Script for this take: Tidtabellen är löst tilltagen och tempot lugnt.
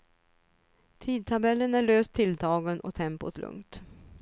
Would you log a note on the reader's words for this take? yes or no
no